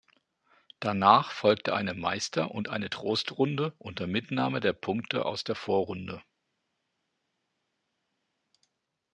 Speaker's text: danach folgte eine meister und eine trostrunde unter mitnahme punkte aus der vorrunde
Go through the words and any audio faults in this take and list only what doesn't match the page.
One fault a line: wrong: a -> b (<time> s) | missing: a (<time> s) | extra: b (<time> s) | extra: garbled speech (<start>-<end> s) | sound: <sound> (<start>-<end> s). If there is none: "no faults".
extra: der (4.6 s)